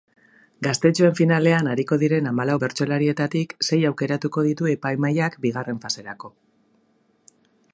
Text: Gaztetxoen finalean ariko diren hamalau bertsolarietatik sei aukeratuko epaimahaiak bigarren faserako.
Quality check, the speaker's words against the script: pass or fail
fail